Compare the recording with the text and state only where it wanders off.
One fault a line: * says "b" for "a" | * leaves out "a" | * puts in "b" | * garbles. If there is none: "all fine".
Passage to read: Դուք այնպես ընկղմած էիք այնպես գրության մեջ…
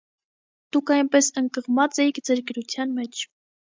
* says "ձեր" for "այնպես"